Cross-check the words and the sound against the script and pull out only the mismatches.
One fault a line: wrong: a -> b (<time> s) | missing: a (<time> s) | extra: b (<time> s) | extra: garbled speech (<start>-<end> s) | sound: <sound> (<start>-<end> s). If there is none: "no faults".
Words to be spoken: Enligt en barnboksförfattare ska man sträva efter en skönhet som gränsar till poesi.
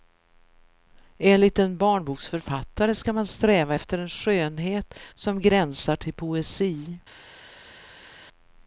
no faults